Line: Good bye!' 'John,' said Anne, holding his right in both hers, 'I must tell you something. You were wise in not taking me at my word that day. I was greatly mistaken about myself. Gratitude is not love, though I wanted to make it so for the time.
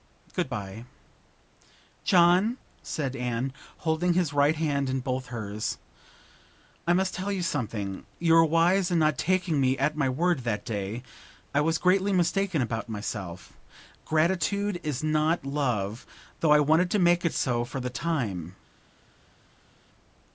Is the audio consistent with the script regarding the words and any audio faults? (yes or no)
no